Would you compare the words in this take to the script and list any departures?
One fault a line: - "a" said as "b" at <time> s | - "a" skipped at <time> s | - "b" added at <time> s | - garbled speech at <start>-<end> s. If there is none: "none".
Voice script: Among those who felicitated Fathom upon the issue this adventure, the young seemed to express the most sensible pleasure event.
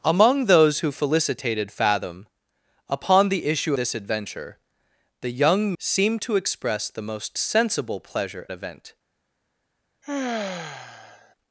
none